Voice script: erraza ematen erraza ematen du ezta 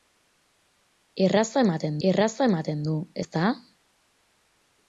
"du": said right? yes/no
yes